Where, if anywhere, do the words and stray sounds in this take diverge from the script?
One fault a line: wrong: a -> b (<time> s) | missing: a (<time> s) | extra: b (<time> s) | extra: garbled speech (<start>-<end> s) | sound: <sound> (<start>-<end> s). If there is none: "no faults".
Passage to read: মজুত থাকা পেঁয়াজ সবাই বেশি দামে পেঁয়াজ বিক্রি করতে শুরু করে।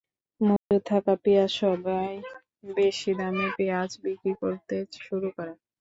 sound: dropout (0.6-0.7 s)